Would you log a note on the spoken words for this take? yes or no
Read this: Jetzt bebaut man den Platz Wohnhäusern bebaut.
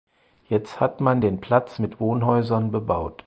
yes